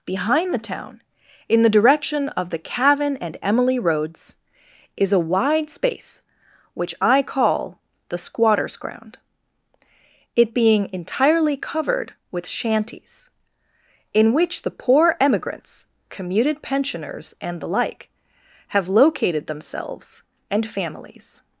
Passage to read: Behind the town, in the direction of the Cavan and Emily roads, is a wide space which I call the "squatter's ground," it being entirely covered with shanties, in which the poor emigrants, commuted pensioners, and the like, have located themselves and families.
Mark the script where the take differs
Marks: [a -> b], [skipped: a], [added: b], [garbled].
Behind the town, in the direction of the Cavan and Emily roads, is a wide space which I call the "squatter's ground," it being entirely covered with shanties, in which the poor emigrants, commuted pensioners, and the like, have located themselves and families.